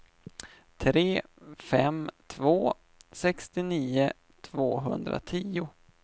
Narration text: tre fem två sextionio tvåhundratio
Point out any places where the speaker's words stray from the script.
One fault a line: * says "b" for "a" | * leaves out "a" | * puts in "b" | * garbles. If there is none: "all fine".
all fine